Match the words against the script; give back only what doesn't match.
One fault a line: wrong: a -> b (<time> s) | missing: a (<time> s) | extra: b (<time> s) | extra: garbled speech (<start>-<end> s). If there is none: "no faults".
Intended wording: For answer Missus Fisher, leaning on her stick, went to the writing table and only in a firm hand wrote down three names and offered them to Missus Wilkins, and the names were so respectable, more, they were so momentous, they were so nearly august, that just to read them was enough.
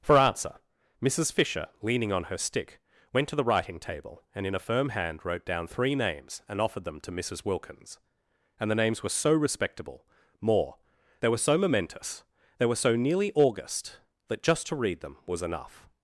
missing: only (4.5 s)